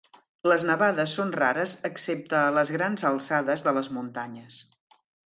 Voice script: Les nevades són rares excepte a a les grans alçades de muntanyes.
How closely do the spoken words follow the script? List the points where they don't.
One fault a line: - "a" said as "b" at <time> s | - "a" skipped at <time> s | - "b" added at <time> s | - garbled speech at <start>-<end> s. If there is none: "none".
- "a" skipped at 2.5 s
- "les" added at 3.8 s